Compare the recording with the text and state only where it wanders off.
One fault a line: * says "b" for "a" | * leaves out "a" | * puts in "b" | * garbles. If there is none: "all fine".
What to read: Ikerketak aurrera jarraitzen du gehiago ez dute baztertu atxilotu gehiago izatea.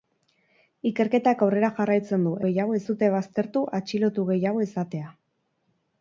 all fine